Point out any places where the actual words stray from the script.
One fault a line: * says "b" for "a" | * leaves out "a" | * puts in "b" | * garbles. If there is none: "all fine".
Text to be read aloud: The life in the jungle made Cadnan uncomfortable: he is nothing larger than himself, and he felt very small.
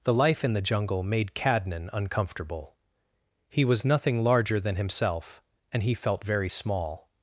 * says "was" for "is"